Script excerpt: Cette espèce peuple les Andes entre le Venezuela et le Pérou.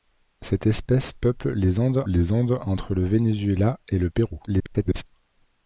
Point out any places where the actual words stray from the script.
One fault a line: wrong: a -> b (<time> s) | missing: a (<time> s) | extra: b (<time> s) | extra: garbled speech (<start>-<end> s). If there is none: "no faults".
extra: les Andes (2.0 s)
extra: garbled speech (4.5-5.0 s)